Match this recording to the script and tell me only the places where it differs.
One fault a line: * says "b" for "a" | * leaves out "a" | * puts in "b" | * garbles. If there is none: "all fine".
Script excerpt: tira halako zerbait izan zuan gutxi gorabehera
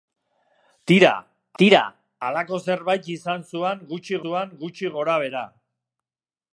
* puts in "tira"
* puts in "zuan gutxi"